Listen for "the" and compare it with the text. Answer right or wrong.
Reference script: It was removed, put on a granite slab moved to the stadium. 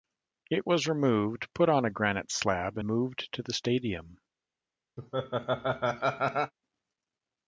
right